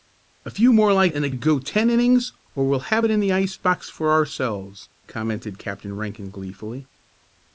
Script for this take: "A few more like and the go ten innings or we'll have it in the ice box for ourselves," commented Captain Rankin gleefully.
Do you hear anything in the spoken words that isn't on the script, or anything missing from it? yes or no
no